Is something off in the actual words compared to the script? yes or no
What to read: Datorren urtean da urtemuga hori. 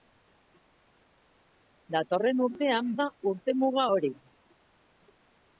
no